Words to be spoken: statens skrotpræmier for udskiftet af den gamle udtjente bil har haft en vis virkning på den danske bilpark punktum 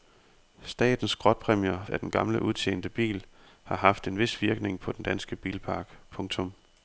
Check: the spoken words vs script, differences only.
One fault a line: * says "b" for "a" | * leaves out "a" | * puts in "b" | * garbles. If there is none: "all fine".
* leaves out "for udskiftet"